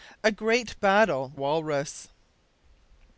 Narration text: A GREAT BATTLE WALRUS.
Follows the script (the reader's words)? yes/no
yes